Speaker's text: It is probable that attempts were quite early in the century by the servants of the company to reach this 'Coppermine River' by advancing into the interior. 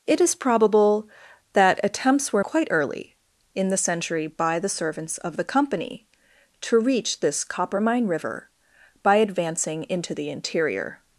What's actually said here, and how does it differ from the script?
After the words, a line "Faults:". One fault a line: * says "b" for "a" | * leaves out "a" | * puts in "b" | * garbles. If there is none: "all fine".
It is probable that attempts were quite early in the century by the servants of the company to reach this 'Coppermine River' by advancing into the interior.
Faults:
all fine